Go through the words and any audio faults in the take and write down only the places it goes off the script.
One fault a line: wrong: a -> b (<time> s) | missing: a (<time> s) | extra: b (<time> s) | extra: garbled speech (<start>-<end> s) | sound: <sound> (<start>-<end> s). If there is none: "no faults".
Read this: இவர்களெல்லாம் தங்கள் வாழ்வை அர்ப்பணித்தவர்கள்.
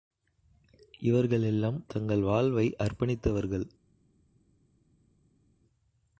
no faults